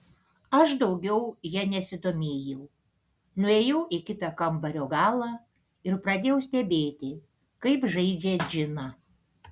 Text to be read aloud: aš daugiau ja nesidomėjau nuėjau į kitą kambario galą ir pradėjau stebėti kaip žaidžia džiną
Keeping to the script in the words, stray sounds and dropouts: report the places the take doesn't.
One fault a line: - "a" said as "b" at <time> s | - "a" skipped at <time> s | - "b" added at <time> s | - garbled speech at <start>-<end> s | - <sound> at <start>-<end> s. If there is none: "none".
none